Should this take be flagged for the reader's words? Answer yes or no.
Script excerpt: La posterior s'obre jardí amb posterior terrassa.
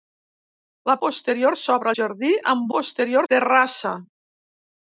no